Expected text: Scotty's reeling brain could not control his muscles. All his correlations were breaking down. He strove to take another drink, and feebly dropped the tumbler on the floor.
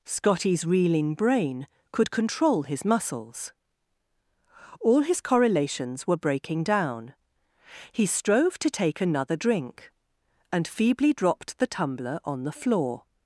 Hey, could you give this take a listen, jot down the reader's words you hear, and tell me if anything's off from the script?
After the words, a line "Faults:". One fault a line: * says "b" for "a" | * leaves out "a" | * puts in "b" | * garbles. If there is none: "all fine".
Scotty's reeling brain could control his muscles. All his correlations were breaking down. He strove to take another drink, and feebly dropped the tumbler on the floor.
Faults:
* leaves out "not"